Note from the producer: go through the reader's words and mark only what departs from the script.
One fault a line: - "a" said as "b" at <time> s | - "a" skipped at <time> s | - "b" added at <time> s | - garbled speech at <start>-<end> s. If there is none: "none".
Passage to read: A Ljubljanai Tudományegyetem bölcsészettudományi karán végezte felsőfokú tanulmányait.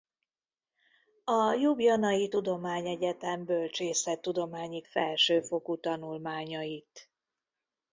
- "karán végezte" skipped at 4.8 s